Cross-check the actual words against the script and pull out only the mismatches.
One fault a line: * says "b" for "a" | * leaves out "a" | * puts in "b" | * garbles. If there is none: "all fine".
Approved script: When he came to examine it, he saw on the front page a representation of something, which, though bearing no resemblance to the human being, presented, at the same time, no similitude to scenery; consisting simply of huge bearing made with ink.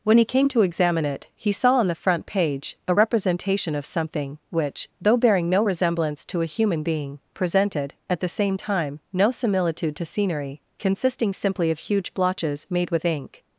* says "a" for "the"
* says "blotches" for "bearing"